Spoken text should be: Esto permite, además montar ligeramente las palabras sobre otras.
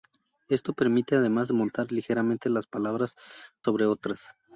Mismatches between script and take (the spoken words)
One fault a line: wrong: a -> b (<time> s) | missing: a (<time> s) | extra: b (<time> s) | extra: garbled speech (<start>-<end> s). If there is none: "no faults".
no faults